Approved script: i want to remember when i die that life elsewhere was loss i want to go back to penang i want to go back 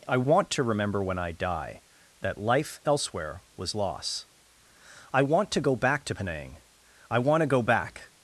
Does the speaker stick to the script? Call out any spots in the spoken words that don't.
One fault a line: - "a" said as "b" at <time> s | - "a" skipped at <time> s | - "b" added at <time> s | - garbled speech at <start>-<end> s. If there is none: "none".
none